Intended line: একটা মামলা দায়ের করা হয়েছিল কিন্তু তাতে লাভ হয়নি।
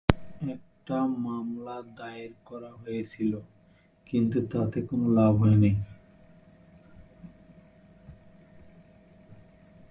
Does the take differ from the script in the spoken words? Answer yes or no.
yes